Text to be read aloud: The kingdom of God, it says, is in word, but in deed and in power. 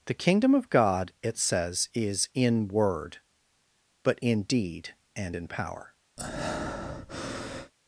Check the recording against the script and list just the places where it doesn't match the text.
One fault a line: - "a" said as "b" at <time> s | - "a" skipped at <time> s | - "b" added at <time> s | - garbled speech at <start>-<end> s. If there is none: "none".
none